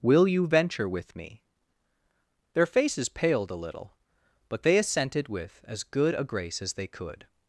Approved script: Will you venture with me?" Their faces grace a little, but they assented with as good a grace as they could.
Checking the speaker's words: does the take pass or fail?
fail